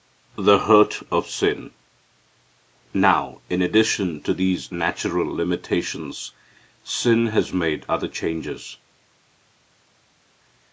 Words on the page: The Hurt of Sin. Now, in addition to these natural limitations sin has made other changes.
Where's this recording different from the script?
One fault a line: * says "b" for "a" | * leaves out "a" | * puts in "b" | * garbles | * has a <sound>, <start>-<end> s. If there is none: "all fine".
all fine